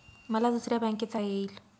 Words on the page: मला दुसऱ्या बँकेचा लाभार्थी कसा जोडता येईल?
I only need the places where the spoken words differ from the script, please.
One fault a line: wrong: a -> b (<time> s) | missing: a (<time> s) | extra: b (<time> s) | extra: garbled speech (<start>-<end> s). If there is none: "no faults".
missing: लाभार्थी कसा जोडता (1.2 s)